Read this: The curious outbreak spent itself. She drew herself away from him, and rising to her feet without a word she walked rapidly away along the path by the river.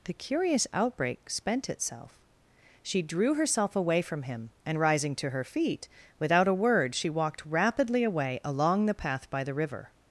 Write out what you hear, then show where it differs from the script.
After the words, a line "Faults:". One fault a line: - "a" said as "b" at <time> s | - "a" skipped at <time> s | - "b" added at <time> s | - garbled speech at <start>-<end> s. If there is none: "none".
The curious outbreak spent itself. She drew herself away from him, and rising to her feet without a word she walked rapidly away along the path by the river.
Faults:
none